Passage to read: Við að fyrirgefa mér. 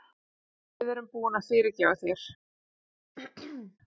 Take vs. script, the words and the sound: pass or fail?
fail